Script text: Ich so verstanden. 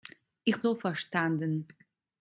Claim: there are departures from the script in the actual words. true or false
false